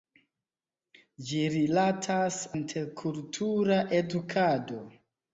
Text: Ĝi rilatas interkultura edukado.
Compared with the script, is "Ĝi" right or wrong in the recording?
right